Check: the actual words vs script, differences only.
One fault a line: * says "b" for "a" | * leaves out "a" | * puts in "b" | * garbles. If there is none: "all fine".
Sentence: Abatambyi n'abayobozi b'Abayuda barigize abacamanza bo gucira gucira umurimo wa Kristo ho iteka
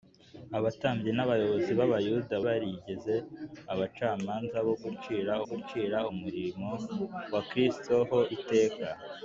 all fine